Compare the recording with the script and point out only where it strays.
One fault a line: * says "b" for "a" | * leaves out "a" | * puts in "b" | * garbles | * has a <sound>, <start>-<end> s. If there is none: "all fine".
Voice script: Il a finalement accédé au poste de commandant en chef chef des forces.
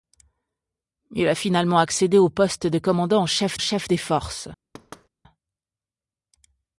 * has a thud, 4.7-5.1 s